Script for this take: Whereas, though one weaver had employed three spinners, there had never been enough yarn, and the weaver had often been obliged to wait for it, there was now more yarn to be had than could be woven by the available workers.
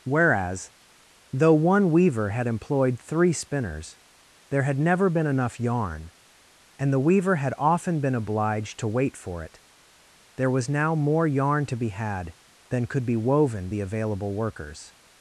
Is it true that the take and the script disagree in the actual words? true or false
true